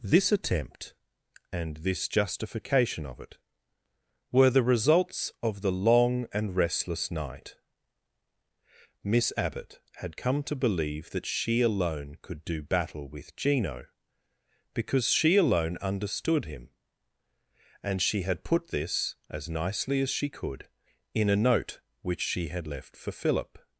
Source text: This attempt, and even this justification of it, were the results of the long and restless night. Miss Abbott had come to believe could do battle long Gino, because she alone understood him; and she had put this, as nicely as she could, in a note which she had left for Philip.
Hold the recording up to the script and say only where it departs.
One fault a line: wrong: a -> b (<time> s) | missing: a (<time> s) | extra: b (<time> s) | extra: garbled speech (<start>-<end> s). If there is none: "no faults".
missing: even (1.8 s)
extra: that she alone (11.1 s)
wrong: long -> with (13.1 s)